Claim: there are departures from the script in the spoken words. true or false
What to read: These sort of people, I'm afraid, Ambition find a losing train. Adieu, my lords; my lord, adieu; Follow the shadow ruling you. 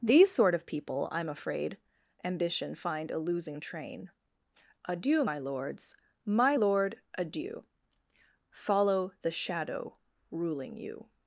false